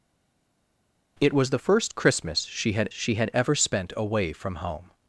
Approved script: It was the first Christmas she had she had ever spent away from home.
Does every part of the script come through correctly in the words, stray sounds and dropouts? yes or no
yes